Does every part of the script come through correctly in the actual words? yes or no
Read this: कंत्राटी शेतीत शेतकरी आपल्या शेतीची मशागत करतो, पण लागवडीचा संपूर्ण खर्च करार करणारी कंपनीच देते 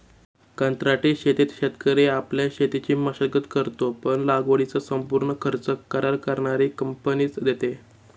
yes